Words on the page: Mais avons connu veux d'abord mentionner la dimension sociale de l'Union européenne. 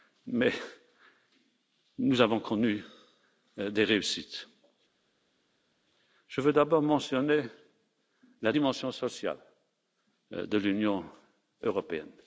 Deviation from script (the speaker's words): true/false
true